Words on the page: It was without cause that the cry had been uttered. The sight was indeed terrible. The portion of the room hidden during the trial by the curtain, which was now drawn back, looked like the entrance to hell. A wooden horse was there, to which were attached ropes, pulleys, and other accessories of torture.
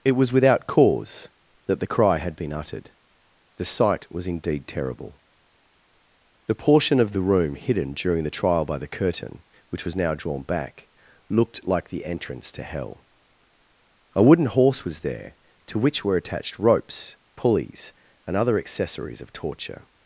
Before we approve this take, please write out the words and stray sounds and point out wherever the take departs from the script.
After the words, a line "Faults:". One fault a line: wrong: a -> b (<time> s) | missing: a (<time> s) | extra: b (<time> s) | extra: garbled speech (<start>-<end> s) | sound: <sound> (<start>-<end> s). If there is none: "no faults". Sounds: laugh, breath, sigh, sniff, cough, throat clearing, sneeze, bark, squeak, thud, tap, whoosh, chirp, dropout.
It was without cause that the cry had been uttered. The sight was indeed terrible. The portion of the room hidden during the trial by the curtain, which was now drawn back, looked like the entrance to hell. A wooden horse was there, to which were attached ropes, pulleys, and other accessories of torture.
Faults:
no faults